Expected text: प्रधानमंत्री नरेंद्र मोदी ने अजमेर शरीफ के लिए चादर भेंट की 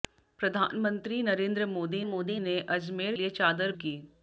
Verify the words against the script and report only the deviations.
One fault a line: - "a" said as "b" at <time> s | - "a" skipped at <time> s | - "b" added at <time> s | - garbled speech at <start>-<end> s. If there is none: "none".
- "मोदी" added at 2.0 s
- "शरीफ के" skipped at 3.2 s
- "भेंट" skipped at 3.7 s